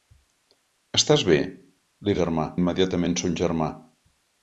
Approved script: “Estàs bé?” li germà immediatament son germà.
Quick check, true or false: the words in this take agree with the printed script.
true